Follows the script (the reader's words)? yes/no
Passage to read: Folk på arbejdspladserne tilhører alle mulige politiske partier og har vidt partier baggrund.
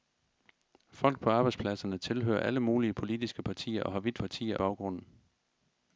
yes